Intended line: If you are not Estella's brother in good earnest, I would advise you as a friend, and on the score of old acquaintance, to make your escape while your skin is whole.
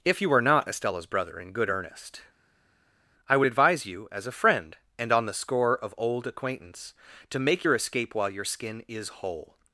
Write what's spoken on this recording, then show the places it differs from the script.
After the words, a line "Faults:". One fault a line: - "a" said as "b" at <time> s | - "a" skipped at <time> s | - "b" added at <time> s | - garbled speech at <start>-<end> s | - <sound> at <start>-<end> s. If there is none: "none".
If you are not Estella's brother in good earnest, I would advise you as a friend, and on the score of old acquaintance, to make your escape while your skin is whole.
Faults:
none